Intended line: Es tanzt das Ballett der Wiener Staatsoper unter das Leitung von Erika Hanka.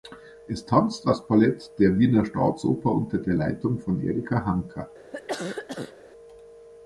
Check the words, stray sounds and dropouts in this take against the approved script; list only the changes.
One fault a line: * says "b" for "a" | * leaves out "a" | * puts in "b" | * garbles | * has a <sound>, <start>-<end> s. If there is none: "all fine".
* says "der" for "das"
* has a cough, 5.1-5.9 s